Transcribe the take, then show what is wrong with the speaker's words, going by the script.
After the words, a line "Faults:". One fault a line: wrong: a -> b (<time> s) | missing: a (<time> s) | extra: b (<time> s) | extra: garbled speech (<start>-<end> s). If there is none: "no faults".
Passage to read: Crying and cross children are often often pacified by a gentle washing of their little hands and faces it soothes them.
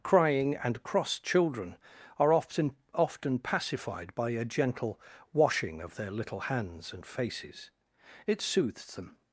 Crying and cross children are often often pacified by a gentle washing of their little hands and faces it soothes them.
Faults:
no faults